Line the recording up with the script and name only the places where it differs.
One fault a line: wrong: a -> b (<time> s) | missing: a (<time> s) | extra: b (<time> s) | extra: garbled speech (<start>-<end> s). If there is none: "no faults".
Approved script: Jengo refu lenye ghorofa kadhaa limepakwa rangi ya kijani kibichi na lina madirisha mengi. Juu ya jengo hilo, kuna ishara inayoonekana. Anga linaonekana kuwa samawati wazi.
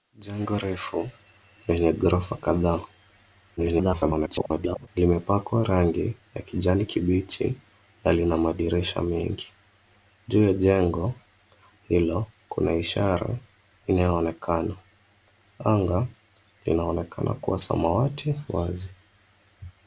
extra: garbled speech (3.6-4.9 s)